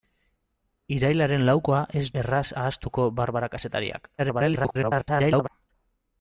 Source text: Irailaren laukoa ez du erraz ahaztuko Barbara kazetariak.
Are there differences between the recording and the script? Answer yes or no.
yes